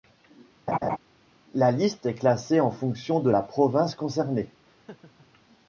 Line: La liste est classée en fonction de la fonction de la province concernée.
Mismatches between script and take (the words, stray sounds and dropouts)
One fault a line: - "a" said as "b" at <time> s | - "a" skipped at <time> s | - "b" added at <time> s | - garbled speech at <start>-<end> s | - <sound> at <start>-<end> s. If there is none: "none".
- laugh at 0.7-1.0 s
- "fonction de la" skipped at 3.4 s
- laugh at 4.6-5.3 s